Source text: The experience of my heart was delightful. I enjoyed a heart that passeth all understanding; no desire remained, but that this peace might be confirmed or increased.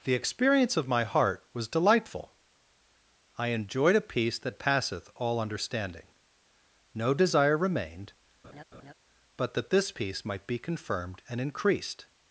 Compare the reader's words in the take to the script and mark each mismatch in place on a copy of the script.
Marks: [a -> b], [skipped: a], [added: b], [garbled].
The experience of my heart was delightful. I enjoyed a [heart -> peace] that passeth all understanding; no desire remained, but that this peace might be confirmed [or -> and] increased.